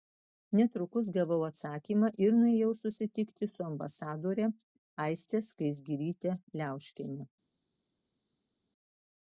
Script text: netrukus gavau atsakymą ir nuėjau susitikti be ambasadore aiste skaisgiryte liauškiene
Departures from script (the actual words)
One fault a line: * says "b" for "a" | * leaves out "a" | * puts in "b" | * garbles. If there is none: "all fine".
* says "su" for "be"